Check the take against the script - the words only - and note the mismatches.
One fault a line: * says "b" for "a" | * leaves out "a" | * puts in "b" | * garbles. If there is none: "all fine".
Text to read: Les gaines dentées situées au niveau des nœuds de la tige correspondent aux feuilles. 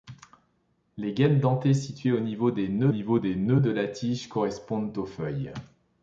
* puts in "niveau des nœuds"